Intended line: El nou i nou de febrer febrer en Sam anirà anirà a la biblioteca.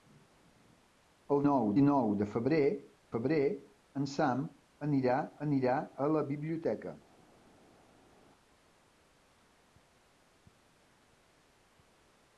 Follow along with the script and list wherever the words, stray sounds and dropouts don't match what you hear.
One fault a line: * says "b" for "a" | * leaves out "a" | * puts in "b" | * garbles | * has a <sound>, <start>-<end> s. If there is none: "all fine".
all fine